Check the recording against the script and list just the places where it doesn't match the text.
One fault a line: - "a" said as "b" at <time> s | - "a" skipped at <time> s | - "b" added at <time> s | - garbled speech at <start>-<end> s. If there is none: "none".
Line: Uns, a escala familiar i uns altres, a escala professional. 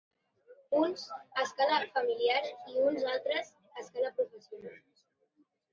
none